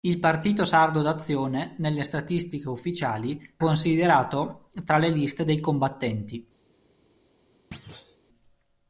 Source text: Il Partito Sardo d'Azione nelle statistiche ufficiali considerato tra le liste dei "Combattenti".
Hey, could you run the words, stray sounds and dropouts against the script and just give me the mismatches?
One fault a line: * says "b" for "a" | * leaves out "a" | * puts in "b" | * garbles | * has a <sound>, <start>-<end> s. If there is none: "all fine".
* has a thud, 7.7-8.2 s